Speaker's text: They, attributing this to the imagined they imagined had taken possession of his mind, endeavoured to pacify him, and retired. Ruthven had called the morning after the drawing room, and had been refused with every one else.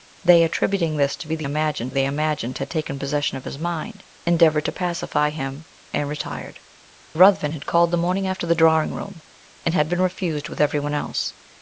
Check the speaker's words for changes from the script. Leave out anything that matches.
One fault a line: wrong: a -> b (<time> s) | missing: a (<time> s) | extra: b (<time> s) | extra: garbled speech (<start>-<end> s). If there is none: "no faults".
no faults